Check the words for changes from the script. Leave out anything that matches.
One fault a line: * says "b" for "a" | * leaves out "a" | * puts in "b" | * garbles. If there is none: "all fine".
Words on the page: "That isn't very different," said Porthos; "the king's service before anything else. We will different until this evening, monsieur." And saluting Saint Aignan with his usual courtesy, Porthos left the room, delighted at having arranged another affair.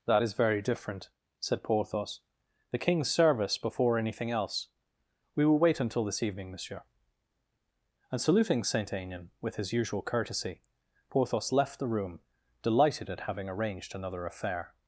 * says "is" for "isn't"
* says "wait" for "different"